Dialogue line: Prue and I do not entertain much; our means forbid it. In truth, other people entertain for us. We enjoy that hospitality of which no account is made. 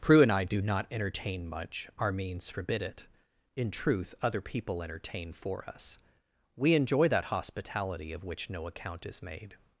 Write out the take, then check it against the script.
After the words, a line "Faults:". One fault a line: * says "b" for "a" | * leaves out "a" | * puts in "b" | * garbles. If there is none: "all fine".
Prue and I do not entertain much; our means forbid it. In truth, other people entertain for us. We enjoy that hospitality of which no account is made.
Faults:
all fine